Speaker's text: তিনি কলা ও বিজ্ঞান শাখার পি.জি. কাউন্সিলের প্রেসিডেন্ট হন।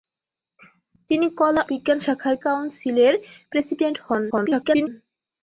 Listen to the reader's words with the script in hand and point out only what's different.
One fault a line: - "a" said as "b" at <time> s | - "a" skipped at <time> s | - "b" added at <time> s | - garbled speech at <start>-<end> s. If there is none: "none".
- "ও" skipped at 1.6 s
- "পি.জি" skipped at 2.3 s
- garbled speech at 4.3-4.9 s